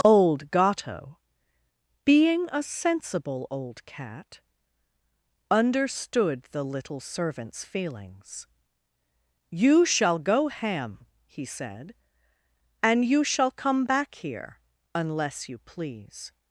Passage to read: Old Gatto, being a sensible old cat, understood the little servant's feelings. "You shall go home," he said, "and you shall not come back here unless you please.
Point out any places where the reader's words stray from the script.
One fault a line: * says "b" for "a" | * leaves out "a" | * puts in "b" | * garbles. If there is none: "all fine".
* says "ham" for "home"
* leaves out "not"